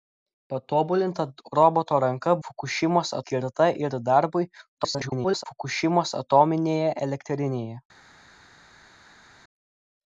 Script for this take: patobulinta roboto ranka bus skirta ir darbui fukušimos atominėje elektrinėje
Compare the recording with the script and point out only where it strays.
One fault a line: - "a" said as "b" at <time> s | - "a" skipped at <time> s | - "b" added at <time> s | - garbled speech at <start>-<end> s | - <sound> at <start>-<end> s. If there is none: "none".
- "bus" said as "fukušimos" at 2.5 s
- garbled speech at 4.8-5.4 s